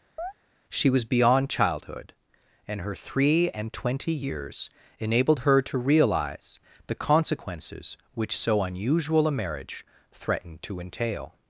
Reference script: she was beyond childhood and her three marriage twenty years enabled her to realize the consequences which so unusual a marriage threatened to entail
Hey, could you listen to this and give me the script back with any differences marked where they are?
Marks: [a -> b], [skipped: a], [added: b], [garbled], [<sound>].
[chirp] she was beyond childhood and her three [marriage -> and] twenty years enabled her to realize the consequences which so unusual a marriage threatened to entail